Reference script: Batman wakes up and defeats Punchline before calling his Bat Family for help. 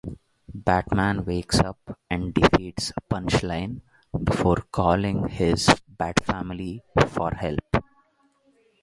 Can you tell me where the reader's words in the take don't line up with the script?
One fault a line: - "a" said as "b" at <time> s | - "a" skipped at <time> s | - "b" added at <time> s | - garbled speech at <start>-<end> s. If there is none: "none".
none